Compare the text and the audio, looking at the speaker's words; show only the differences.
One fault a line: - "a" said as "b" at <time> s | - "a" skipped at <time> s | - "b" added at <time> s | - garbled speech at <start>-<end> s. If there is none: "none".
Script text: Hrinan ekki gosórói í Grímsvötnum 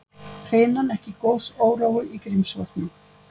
none